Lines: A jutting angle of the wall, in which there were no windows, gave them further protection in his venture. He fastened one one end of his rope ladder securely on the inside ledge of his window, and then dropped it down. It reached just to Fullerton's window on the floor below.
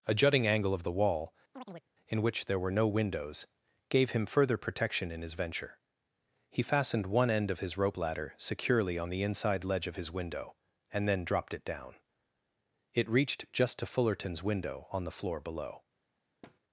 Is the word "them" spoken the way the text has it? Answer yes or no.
no